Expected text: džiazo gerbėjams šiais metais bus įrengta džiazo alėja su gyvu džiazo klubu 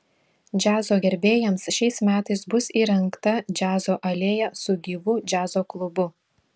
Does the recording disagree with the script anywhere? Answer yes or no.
no